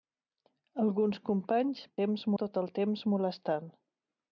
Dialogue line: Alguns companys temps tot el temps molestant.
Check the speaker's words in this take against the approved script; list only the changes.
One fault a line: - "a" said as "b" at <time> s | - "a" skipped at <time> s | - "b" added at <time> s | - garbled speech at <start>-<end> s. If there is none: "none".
none